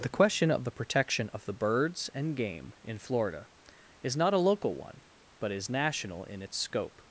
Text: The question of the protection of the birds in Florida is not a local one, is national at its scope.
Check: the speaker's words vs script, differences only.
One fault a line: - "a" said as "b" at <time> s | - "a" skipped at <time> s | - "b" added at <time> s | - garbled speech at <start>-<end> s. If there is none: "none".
- "and game" added at 2.1 s
- "but" added at 5.4 s
- "at" said as "in" at 6.2 s